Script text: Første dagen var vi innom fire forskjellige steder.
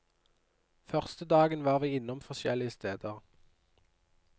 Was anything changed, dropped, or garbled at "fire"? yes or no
yes